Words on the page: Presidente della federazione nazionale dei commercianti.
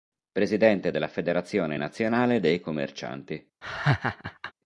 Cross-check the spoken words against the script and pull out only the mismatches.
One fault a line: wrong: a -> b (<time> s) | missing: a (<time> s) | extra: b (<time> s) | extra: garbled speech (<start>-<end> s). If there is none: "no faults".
no faults